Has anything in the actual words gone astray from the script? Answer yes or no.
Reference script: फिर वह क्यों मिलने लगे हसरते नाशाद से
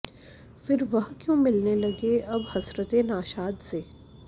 yes